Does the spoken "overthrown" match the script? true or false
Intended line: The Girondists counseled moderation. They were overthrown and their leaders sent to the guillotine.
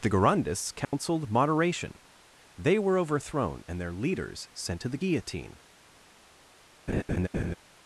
true